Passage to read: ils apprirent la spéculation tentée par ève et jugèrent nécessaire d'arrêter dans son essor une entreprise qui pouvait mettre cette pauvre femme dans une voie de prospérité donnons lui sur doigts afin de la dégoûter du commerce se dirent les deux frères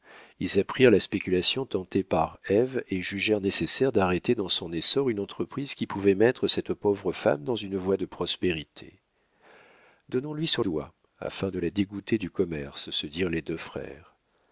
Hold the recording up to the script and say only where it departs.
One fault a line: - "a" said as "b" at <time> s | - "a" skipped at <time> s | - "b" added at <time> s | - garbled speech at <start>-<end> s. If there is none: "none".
none